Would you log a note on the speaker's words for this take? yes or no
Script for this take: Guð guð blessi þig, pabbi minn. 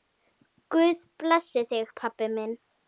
yes